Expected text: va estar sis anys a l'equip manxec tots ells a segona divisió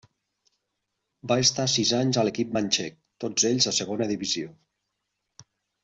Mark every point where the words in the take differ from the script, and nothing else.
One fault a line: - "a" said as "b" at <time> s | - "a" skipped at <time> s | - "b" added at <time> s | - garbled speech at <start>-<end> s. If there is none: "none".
none